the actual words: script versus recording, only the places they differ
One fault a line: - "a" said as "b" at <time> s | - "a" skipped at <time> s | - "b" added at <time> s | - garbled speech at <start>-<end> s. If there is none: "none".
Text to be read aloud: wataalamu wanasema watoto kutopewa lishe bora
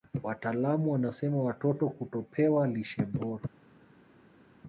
none